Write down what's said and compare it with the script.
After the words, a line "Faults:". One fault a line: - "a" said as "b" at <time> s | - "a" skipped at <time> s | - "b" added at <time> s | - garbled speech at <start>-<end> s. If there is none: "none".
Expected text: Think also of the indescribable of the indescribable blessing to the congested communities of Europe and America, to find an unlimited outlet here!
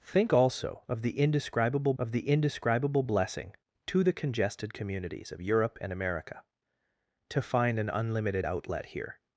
Think also of the indescribable of the indescribable blessing to the congested communities of Europe and America, to find an unlimited outlet here!
Faults:
none